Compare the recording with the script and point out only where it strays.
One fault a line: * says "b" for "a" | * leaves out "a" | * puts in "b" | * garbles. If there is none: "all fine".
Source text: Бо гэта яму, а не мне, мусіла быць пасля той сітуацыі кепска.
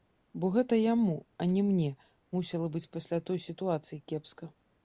all fine